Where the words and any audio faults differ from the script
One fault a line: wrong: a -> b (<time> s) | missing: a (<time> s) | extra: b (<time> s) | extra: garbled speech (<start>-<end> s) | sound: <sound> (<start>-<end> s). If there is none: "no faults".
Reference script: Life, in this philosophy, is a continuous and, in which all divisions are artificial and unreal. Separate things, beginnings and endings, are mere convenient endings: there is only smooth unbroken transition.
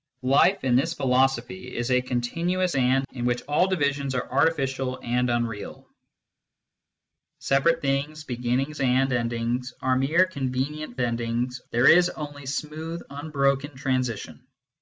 no faults